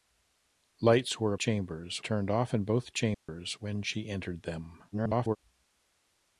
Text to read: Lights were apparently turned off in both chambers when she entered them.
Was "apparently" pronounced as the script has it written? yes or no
no